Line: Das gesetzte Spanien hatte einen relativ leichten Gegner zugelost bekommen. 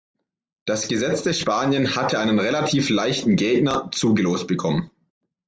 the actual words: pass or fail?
pass